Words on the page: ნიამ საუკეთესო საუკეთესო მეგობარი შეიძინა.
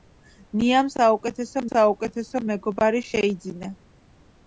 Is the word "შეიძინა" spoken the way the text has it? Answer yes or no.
yes